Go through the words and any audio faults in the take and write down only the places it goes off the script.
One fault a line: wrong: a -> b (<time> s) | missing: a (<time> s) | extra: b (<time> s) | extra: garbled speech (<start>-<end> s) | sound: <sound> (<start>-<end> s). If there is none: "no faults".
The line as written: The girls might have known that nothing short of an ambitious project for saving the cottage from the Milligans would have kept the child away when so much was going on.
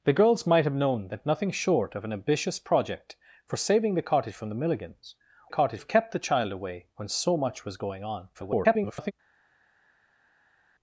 wrong: would -> cottage (5.5 s)
extra: garbled speech (8.3-9.1 s)